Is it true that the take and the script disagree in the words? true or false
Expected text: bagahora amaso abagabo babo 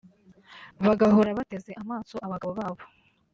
true